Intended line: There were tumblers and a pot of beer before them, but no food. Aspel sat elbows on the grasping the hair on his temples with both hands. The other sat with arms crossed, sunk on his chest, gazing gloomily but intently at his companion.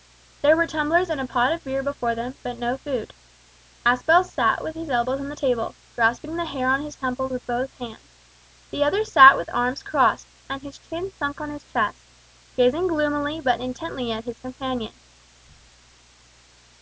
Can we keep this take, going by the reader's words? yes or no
no